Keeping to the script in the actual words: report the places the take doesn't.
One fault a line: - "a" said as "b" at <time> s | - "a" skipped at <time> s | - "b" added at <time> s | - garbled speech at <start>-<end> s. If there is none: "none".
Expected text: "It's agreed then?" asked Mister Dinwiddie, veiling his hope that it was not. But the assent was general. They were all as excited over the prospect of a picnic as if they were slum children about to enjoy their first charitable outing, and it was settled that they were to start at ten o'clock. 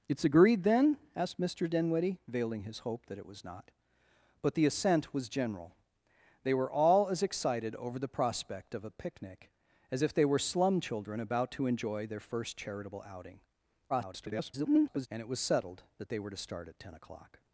- garbled speech at 13.9-15.1 s